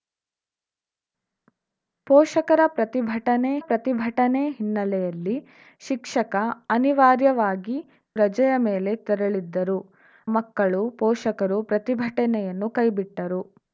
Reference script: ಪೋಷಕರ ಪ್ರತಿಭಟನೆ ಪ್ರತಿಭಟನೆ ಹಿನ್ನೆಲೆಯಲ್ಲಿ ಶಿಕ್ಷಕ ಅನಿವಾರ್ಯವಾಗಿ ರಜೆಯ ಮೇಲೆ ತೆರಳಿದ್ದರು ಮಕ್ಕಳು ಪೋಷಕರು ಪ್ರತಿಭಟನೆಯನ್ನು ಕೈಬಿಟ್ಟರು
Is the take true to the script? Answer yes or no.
yes